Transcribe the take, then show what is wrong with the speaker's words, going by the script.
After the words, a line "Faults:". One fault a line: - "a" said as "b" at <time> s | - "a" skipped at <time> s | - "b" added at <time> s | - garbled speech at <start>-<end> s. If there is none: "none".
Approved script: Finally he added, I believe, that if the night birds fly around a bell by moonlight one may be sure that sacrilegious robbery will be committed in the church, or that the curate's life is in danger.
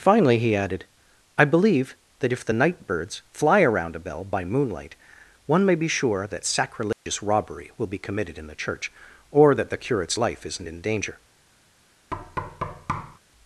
Finally he added, I believe, that if the night birds fly around a bell by moonlight one may be sure that sacrilegious robbery will be committed in the church, or that the curate's life isn't in danger.
Faults:
- "is" said as "isn't" at 10.4 s